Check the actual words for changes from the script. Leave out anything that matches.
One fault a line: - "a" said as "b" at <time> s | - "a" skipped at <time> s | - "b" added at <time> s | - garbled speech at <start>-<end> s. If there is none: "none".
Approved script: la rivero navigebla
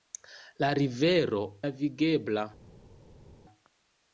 none